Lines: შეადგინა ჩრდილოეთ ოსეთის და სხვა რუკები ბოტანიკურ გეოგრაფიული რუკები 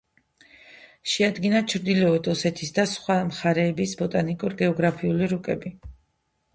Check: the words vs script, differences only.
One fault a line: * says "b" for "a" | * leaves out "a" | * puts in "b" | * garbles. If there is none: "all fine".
* says "მხარეების" for "რუკები"